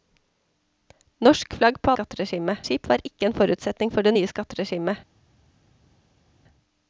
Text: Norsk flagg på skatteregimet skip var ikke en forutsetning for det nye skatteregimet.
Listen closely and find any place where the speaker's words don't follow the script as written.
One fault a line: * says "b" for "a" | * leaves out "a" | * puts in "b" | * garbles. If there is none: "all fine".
all fine